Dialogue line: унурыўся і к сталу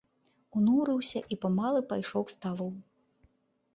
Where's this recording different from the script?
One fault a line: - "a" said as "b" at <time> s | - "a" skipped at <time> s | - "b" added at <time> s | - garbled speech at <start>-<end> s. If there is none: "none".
- "памалу пайшоў" added at 1.4 s